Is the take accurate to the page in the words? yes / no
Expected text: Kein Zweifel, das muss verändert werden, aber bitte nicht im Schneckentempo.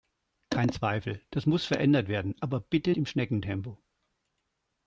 no